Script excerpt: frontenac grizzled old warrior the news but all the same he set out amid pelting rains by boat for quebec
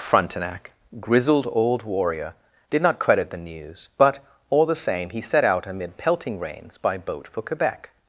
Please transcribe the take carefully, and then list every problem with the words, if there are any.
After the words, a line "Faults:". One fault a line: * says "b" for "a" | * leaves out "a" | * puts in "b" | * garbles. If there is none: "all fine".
frontenac grizzled old warrior did not credit the news but all the same he set out amid pelting rains by boat for quebec
Faults:
* puts in "did not credit"